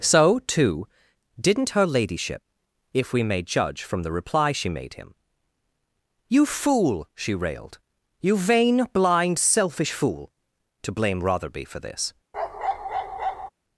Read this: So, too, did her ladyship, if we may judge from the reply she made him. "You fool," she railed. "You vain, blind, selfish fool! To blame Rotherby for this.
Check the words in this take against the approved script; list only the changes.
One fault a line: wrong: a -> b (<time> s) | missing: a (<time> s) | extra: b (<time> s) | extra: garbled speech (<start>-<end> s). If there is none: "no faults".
wrong: did -> didn't (1.4 s)